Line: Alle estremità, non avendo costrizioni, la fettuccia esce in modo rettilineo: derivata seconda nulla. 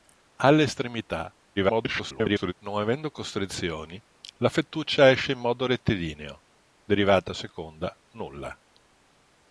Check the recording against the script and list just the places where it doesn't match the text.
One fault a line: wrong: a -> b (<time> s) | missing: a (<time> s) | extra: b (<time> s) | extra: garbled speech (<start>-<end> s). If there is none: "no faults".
extra: garbled speech (1.6-2.5 s)